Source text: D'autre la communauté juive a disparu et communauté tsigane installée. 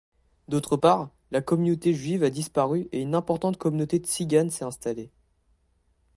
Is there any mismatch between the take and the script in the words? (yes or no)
yes